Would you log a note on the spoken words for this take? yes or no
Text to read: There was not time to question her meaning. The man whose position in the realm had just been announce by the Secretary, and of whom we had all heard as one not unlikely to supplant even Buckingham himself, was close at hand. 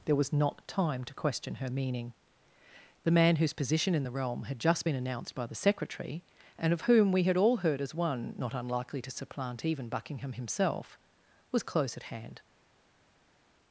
yes